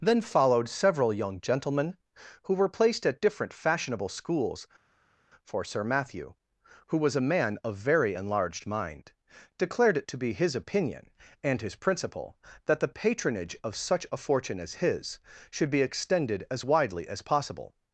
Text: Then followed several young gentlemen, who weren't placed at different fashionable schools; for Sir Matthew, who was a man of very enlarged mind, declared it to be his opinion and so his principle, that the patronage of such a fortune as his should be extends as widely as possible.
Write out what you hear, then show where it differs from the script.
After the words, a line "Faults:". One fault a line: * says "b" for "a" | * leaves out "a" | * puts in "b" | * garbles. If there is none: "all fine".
Then followed several young gentlemen, who were placed at different fashionable schools; for Sir Matthew, who was a man of very enlarged mind, declared it to be his opinion and his principle, that the patronage of such a fortune as his should be extended as widely as possible.
Faults:
* says "were" for "weren't"
* leaves out "so"
* says "extended" for "extends"